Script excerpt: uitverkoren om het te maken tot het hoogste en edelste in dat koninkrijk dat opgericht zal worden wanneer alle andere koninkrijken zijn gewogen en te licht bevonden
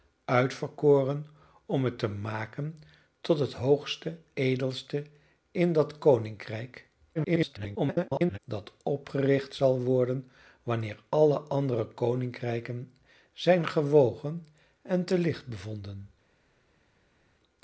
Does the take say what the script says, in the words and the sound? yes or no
no